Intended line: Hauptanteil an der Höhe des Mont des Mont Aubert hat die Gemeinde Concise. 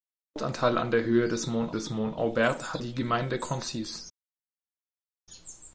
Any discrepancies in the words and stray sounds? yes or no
no